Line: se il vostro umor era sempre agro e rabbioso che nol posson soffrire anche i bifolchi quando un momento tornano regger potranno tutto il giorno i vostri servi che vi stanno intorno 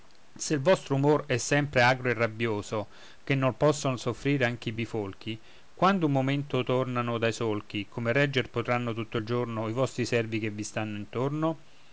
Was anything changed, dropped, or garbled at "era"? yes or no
yes